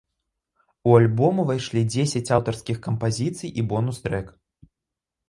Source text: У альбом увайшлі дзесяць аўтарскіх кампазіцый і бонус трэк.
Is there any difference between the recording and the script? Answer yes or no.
no